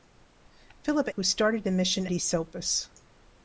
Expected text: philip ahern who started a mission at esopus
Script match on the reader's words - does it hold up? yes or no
no